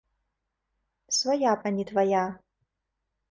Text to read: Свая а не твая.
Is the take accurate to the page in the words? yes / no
yes